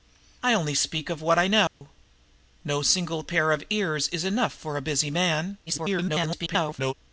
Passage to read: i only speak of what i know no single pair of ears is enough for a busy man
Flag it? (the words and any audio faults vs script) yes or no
yes